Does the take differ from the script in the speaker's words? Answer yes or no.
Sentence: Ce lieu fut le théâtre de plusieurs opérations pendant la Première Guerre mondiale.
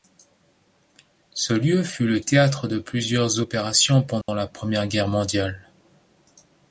no